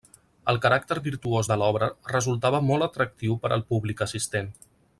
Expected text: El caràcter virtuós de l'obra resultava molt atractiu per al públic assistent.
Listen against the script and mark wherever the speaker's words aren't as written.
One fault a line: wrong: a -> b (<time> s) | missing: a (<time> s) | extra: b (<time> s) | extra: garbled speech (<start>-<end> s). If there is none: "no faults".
no faults